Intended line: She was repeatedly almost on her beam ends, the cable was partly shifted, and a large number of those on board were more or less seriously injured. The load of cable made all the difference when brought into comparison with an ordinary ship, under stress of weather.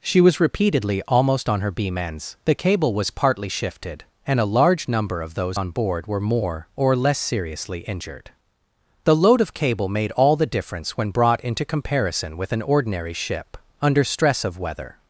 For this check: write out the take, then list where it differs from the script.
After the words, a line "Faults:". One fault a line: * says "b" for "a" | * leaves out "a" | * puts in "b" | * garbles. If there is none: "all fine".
She was repeatedly almost on her beam ends, the cable was partly shifted, and a large number of those on board were more or less seriously injured. The load of cable made all the difference when brought into comparison with an ordinary ship, under stress of weather.
Faults:
all fine